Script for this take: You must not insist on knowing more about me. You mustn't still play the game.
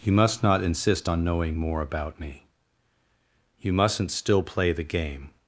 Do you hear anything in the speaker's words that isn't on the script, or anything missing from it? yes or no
no